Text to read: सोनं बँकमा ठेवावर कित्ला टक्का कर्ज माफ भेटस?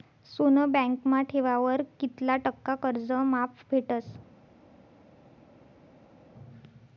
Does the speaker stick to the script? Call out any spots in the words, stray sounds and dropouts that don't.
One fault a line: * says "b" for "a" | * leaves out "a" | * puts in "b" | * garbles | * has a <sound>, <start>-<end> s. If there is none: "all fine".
all fine